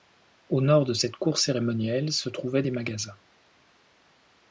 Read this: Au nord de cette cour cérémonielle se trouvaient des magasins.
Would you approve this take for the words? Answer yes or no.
yes